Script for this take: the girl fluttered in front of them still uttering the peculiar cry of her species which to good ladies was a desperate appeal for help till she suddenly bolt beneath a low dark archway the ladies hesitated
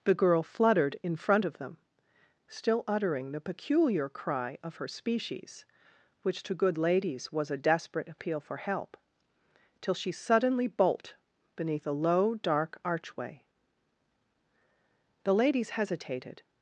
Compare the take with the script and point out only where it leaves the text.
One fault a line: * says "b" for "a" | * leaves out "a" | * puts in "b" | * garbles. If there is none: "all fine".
all fine